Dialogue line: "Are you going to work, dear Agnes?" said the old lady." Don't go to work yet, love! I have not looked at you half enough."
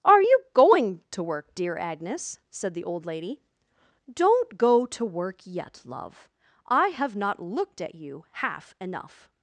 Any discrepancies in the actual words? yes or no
no